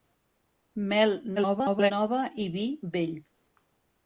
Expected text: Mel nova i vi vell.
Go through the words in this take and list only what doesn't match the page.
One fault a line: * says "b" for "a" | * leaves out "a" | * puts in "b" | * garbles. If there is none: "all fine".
* garbles